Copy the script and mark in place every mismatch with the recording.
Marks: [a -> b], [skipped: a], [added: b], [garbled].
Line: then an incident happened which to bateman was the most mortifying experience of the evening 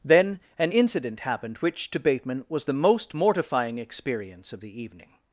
then an incident happened which to bateman was the most mortifying experience of the evening